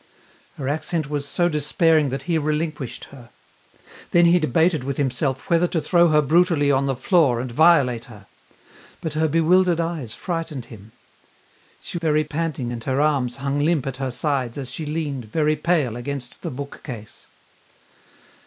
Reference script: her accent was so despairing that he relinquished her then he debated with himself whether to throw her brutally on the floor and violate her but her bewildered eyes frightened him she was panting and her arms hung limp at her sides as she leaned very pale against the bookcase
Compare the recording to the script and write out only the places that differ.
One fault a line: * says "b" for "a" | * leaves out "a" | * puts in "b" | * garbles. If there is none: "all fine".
* says "very" for "was"